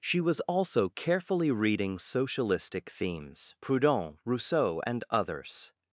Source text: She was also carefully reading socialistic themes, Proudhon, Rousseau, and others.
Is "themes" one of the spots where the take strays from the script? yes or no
no